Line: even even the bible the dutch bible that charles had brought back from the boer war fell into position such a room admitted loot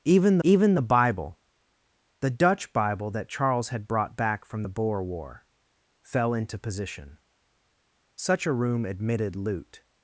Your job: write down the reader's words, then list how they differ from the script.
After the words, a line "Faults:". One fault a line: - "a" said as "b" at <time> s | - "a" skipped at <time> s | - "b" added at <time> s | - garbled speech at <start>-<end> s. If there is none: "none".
even even the bible the dutch bible that charles had brought back from the boer war fell into position such a room admitted loot
Faults:
none